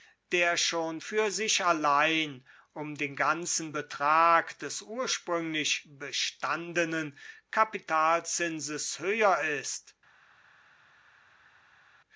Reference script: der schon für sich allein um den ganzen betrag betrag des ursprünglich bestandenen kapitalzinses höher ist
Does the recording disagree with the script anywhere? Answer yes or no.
yes